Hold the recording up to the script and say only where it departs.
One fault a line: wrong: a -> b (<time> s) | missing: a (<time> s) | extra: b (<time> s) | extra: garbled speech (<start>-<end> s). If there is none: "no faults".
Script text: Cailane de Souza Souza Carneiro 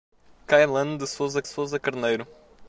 no faults